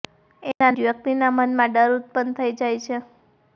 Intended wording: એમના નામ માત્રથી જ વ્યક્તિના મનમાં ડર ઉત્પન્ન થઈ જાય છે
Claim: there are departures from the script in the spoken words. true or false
true